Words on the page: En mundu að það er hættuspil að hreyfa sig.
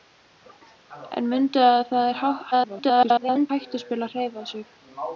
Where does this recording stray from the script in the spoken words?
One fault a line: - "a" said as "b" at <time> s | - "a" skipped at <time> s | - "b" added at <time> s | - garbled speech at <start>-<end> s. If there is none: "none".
- garbled speech at 2.5-3.5 s